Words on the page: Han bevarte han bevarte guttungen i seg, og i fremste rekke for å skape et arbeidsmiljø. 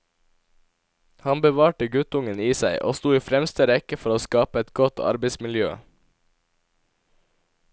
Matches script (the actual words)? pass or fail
fail